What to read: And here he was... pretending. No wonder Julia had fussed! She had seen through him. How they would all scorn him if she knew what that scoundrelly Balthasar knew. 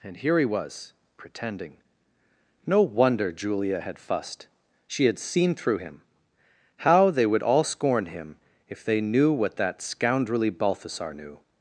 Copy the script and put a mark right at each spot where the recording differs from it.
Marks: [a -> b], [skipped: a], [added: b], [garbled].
And here he was... pretending. No wonder Julia had fussed! She had seen through him. How they would all scorn him if [she -> they] knew what that scoundrelly Balthasar knew.